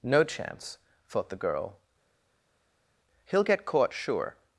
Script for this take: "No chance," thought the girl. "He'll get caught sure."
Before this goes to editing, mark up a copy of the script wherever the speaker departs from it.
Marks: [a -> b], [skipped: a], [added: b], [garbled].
"No chance," thought the girl. "He'll get caught sure."